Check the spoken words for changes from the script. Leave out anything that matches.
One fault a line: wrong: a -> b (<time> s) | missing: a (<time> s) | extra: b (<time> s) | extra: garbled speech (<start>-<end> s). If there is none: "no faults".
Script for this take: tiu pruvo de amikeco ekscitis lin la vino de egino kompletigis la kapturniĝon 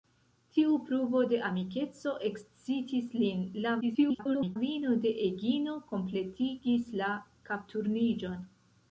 extra: garbled speech (3.8-4.6 s)